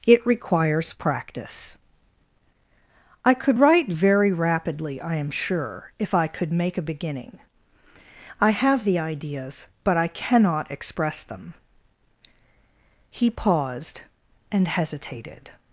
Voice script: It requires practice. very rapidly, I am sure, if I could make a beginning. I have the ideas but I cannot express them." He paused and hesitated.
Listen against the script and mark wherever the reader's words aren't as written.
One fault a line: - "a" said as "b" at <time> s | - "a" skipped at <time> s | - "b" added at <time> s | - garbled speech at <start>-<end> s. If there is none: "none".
- "I could write" added at 3.2 s